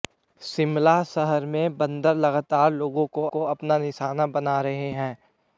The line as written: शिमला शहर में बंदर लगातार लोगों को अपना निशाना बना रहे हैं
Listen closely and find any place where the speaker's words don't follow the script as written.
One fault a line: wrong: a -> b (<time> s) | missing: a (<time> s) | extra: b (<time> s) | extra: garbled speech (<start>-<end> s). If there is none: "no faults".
extra: को (3.3 s)